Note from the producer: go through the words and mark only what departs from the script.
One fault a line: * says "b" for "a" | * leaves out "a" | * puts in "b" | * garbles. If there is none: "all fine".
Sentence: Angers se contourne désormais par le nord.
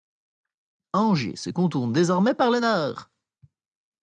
all fine